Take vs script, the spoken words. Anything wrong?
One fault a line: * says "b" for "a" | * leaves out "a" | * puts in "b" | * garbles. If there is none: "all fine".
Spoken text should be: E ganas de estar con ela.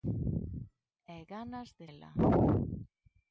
* leaves out "estar con"